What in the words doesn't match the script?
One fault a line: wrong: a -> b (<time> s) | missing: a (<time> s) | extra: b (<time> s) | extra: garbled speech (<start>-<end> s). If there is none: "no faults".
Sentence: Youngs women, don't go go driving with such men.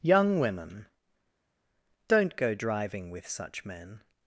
wrong: Youngs -> Young (0.0 s)
missing: go (2.5 s)